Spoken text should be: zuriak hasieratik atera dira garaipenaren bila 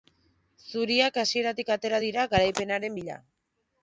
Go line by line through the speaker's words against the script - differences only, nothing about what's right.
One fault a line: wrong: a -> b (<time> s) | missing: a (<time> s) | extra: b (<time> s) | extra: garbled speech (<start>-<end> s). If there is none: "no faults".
no faults